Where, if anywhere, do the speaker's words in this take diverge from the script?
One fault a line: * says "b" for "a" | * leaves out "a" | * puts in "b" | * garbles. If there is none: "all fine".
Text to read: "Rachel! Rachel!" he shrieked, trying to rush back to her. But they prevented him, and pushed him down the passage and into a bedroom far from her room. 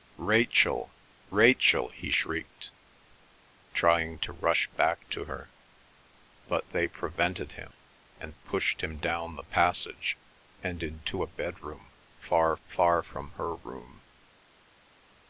* puts in "far"